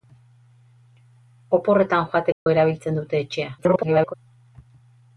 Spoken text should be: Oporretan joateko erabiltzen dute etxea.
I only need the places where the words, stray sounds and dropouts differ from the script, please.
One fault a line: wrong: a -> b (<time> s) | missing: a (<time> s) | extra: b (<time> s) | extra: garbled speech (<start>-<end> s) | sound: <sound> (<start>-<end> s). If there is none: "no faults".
sound: dropout (2.3-2.5 s)
extra: garbled speech (3.6-4.1 s)